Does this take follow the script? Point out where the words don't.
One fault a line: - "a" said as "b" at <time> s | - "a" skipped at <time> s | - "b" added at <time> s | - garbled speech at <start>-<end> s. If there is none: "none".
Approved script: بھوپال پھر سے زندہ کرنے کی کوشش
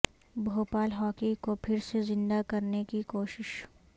- "ہاکی کو" added at 0.9 s